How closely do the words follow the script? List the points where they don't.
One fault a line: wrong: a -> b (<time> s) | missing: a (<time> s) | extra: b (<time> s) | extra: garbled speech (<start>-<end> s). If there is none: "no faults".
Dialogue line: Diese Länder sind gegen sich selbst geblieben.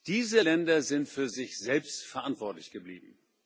wrong: gegen -> für (1.1 s)
extra: verantwortlich (2.0 s)